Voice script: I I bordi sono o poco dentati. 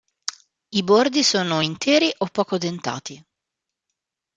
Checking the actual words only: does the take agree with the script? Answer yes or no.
no